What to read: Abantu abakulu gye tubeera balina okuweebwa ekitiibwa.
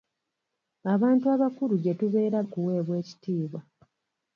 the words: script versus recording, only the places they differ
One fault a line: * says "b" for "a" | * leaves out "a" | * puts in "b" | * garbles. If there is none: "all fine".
* leaves out "balina"